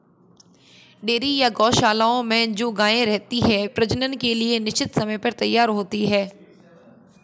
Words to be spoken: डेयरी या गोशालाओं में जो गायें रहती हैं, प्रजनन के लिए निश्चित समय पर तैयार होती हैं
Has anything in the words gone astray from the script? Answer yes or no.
no